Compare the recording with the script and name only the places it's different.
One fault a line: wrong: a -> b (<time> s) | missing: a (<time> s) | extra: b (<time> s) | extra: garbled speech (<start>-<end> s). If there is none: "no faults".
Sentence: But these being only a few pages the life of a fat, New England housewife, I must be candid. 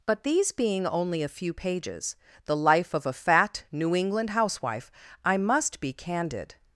no faults